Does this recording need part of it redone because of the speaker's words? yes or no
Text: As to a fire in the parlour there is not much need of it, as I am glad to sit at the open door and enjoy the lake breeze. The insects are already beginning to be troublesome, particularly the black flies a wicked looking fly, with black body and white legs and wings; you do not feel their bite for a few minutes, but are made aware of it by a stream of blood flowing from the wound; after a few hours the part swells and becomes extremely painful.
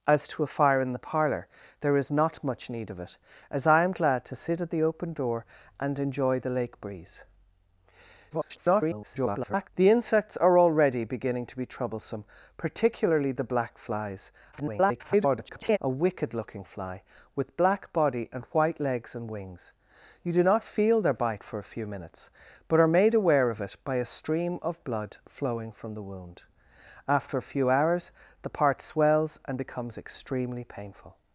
yes